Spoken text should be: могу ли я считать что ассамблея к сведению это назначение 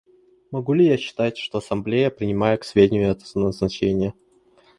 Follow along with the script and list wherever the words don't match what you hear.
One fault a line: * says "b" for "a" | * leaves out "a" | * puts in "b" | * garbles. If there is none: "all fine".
* puts in "принимает"